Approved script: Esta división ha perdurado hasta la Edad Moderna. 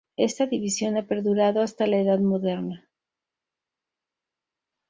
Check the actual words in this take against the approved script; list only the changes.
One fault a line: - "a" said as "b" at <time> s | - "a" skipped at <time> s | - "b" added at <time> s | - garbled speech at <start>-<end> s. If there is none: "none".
none